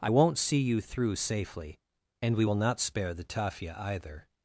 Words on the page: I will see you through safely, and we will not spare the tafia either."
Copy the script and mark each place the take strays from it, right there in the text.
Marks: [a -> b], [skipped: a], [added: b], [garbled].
I [will -> won't] see you through safely, and we will not spare the tafia either."